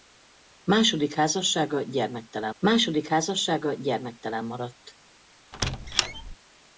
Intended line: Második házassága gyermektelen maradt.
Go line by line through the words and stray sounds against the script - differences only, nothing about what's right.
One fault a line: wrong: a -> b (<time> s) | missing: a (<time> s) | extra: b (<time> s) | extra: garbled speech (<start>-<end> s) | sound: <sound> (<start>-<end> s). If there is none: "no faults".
extra: második házassága gyermektelen (2.6 s)
sound: squeak (5.5-6.4 s)